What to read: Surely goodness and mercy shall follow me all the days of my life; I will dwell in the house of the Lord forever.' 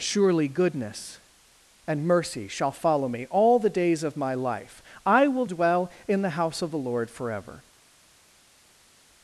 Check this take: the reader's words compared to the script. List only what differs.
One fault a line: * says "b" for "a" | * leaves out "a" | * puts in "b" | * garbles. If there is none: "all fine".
all fine